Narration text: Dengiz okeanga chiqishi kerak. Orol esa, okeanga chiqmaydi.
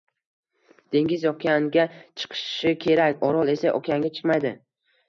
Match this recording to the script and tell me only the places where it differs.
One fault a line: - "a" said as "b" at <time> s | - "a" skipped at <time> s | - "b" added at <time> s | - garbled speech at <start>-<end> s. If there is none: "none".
none